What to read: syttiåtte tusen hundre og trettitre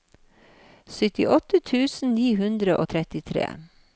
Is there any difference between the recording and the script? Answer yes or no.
yes